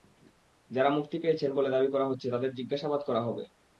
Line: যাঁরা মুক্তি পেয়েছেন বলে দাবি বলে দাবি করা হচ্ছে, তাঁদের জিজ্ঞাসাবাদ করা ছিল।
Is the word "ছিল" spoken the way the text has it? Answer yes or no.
no